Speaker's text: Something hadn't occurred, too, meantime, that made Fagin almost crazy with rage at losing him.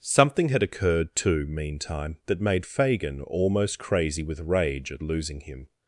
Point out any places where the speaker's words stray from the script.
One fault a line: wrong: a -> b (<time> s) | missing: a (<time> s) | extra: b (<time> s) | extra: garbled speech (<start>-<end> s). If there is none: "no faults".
wrong: hadn't -> had (0.5 s)